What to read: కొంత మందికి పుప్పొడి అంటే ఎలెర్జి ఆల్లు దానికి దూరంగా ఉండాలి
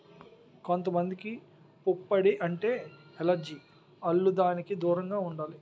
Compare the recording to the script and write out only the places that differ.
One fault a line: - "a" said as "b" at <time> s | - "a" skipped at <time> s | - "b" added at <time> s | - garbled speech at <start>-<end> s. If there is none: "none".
none